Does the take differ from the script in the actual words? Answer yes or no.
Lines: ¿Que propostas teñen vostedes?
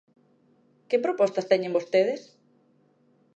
no